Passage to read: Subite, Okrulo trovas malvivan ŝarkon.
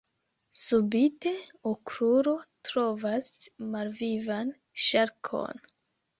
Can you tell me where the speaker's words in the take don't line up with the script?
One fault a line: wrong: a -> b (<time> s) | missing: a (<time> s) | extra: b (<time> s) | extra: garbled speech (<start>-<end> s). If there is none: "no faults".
no faults